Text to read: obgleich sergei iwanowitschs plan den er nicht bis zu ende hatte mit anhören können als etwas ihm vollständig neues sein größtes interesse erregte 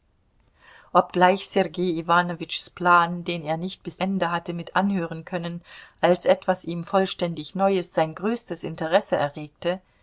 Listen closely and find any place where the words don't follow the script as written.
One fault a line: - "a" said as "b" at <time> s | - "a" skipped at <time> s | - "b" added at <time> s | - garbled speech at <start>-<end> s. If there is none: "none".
- "zu" skipped at 4.0 s